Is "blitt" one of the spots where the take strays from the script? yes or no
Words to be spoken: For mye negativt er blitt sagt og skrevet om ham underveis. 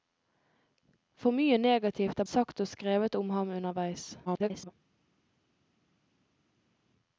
yes